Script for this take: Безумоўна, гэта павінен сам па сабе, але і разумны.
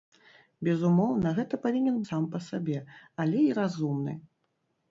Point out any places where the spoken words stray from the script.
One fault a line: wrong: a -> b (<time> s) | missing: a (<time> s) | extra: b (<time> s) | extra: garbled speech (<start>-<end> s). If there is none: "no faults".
no faults